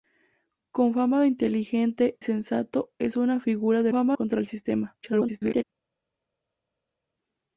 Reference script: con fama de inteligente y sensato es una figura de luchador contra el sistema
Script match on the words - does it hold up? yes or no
no